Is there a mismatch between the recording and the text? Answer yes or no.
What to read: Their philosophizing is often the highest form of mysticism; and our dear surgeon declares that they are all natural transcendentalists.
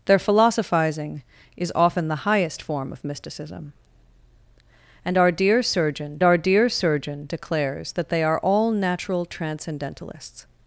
yes